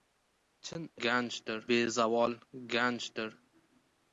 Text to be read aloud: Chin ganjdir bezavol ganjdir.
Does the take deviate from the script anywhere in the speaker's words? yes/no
no